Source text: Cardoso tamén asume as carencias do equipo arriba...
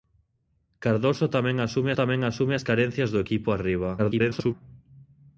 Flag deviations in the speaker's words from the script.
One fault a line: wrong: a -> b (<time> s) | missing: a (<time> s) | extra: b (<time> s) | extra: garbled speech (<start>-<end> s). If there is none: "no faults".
extra: tamén asume (2.0 s)
extra: garbled speech (4.0-4.5 s)